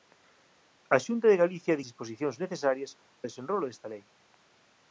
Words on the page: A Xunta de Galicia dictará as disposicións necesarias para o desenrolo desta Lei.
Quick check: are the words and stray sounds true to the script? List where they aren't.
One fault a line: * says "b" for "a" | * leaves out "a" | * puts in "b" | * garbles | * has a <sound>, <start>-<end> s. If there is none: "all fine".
* leaves out "dictará as"
* leaves out "para"